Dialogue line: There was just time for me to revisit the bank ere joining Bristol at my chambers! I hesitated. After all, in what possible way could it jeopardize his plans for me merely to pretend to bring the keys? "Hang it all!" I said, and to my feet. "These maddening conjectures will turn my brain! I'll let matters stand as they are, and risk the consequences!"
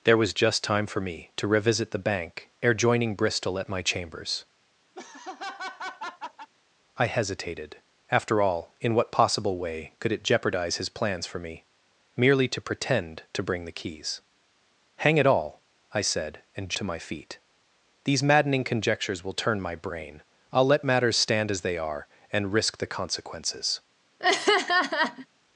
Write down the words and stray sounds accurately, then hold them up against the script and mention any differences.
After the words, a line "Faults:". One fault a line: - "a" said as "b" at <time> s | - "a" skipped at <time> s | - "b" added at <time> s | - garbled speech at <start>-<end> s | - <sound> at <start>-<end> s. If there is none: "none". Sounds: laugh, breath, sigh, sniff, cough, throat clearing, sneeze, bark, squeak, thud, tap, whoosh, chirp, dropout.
There was just time for me to revisit the bank ere joining Bristol at my chambers! I hesitated. After all, in what possible way could it jeopardize his plans for me merely to pretend to bring the keys? "Hang it all!" I said, and to my feet. "These maddening conjectures will turn my brain! I'll let matters stand as they are, and risk the consequences!"
Faults:
- laugh at 4.9-6.5 s
- laugh at 24.2-25.3 s